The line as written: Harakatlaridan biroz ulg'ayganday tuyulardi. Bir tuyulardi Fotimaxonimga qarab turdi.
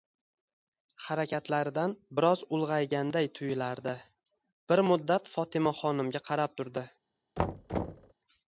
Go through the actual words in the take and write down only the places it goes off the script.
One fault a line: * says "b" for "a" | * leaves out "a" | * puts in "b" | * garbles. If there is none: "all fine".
* says "muddat" for "tuyulardi"